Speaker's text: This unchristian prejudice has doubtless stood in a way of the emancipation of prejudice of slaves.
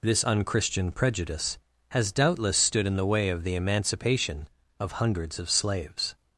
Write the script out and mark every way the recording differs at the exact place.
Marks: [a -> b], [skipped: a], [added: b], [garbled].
This unchristian prejudice has doubtless stood in [a -> the] way of the emancipation of [prejudice -> hundreds] of slaves.